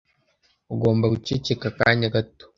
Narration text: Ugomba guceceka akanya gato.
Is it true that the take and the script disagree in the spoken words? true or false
false